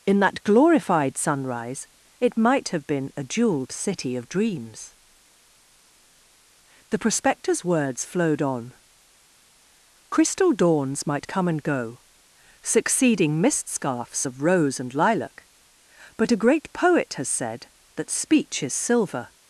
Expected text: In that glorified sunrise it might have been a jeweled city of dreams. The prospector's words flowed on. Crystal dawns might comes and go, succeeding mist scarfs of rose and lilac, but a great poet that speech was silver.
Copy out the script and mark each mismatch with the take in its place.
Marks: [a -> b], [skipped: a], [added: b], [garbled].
In that glorified sunrise it might have been a jeweled city of dreams. The prospector's words flowed on. Crystal dawns might [comes -> come] and go, succeeding mist scarfs of rose and lilac, but a great poet [added: has said] that speech [was -> is] silver.